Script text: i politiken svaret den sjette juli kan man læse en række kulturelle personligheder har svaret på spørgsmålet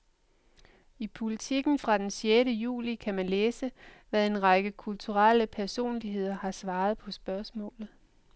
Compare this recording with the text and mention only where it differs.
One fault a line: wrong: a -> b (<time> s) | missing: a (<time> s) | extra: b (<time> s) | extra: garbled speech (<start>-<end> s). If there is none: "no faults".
wrong: svaret -> fra (1.8 s)
extra: hvad (4.1 s)